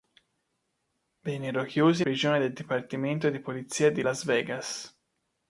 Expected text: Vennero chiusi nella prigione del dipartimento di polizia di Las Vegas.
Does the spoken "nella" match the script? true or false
false